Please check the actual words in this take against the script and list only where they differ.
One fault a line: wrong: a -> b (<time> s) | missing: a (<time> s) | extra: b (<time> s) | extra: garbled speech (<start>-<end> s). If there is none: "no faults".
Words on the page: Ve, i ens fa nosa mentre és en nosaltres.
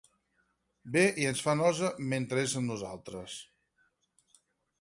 wrong: en -> amb (2.6 s)